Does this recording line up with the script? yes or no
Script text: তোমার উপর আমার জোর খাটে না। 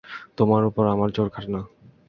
yes